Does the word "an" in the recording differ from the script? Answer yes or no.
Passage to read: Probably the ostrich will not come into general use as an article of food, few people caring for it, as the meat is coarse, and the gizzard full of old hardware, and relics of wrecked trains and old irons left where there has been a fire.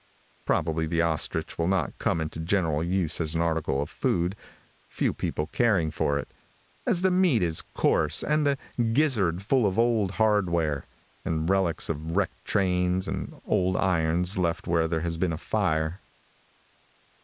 no